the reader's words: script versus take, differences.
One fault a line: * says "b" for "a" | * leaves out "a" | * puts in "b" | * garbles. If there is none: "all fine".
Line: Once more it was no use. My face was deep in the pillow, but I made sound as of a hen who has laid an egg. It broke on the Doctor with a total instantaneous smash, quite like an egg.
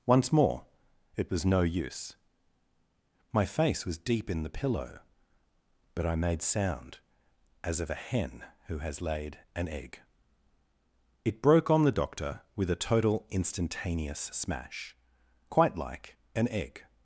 all fine